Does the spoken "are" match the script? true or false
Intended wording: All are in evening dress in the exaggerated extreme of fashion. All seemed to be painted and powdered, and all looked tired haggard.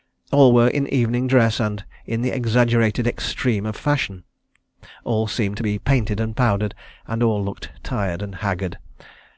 false